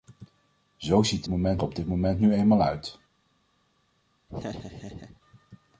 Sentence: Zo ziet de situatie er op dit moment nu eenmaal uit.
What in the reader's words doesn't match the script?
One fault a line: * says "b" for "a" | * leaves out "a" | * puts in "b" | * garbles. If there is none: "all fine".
* says "moment" for "situatie"